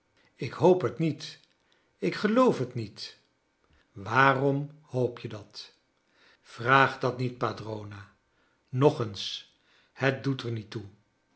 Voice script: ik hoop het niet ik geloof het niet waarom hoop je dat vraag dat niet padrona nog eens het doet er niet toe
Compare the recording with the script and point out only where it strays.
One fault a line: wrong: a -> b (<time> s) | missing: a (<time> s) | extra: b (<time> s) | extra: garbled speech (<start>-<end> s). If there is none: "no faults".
no faults